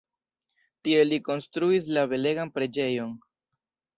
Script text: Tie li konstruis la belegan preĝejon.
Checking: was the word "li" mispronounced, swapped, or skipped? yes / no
no